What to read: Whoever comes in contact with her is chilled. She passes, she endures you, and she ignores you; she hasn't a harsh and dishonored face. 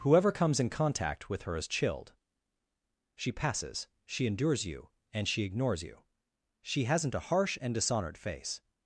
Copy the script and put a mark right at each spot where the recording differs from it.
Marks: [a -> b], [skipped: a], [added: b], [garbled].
Whoever comes in contact with her is chilled. She passes, she endures you, and she ignores you; she hasn't a harsh and dishonored face.